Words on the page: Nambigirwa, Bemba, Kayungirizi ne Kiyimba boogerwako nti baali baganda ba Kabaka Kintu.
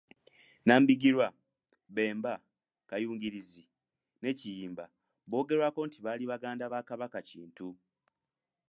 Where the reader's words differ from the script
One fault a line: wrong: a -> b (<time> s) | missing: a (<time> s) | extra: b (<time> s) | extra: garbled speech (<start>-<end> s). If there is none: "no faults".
no faults